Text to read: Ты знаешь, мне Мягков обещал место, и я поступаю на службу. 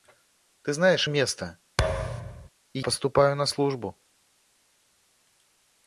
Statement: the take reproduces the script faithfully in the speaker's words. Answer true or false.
false